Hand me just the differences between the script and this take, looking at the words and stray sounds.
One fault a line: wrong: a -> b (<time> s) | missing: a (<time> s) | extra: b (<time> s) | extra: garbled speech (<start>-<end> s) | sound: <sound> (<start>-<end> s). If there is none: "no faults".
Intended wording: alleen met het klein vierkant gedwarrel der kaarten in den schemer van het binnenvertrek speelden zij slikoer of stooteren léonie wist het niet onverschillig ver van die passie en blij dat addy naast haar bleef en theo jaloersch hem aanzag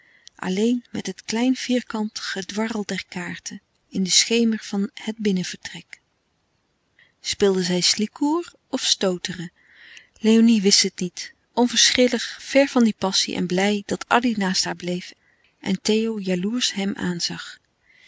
no faults